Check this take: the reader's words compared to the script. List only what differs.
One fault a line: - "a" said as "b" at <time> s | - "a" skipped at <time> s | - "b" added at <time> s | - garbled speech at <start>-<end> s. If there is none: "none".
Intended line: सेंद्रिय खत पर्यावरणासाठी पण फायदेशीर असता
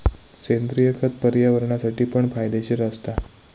none